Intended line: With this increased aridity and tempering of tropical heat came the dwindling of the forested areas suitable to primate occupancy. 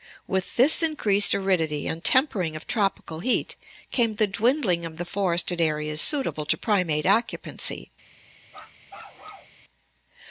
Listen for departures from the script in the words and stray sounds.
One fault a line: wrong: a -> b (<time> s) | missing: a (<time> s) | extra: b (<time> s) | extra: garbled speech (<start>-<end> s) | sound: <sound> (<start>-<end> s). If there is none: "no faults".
sound: bark (8.5-9.6 s)